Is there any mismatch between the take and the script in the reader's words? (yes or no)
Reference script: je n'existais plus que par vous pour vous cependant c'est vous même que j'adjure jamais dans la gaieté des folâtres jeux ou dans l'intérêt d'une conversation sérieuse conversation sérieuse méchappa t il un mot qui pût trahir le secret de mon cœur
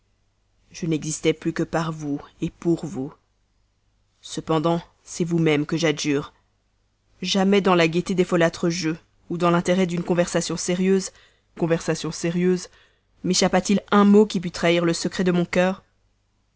no